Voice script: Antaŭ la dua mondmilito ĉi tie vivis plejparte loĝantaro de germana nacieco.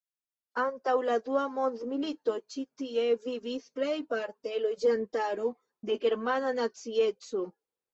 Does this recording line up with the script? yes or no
yes